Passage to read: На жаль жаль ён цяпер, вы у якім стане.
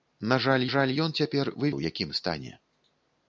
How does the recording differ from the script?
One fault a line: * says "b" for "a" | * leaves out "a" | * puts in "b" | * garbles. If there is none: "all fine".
all fine